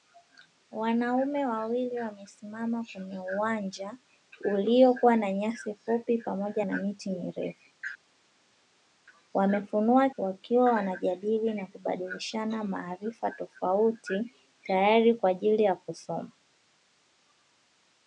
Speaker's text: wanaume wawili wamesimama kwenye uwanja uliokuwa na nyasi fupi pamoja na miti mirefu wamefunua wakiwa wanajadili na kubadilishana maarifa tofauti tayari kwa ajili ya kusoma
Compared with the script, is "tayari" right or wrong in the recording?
right